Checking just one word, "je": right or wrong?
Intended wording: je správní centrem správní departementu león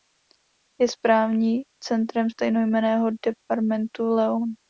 right